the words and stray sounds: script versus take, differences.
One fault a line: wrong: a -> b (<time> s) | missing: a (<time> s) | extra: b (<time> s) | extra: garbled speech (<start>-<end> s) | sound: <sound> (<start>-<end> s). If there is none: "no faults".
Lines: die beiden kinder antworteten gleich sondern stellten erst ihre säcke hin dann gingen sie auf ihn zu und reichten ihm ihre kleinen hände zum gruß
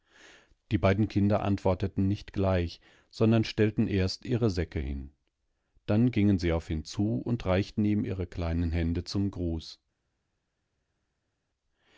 extra: nicht (2.1 s)